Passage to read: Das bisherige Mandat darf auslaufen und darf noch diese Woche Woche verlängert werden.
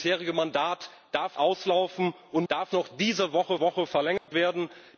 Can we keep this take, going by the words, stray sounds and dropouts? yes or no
no